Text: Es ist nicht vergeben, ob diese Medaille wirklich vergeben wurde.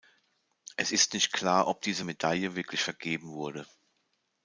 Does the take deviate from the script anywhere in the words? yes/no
yes